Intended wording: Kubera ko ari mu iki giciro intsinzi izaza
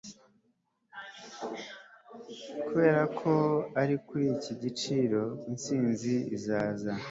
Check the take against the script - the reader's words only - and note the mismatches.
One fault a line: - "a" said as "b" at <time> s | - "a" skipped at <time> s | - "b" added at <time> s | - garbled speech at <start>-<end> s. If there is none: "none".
- "mu" said as "kuri" at 4.1 s